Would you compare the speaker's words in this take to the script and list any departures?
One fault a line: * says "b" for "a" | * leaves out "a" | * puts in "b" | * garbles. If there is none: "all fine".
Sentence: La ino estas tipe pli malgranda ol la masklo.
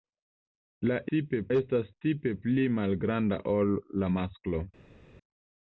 * says "tipe" for "ino"